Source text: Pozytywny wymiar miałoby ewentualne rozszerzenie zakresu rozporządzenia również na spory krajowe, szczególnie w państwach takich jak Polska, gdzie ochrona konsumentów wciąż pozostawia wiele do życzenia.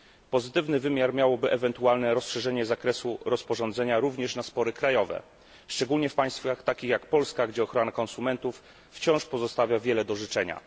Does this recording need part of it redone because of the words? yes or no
no